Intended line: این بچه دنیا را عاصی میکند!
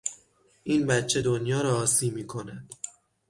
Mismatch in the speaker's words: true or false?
false